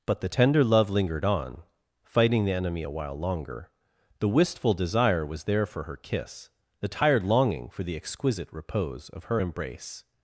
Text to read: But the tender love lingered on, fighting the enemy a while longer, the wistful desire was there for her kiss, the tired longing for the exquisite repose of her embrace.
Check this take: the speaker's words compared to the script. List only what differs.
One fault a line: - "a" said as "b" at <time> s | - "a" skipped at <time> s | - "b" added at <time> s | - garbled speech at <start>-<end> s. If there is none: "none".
none